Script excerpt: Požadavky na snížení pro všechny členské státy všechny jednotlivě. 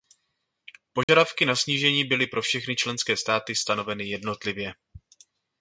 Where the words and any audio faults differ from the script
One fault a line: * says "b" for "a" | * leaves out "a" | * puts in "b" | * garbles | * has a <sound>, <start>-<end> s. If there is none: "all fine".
* has a dropout, 1.0-1.1 s
* puts in "byly"
* says "stanoveny" for "všechny"